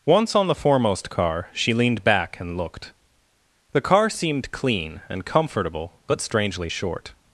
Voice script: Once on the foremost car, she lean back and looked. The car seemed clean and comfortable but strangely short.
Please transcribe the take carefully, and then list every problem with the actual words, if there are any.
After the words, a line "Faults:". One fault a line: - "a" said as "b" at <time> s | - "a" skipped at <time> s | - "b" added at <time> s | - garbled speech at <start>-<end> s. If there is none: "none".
Once on the foremost car, she leaned back and looked. The car seemed clean and comfortable but strangely short.
Faults:
- "lean" said as "leaned" at 1.8 s